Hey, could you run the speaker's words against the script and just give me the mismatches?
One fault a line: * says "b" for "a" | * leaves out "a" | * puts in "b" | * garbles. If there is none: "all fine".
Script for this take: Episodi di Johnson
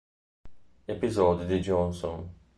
all fine